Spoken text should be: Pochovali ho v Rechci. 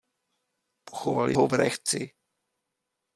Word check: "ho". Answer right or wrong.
right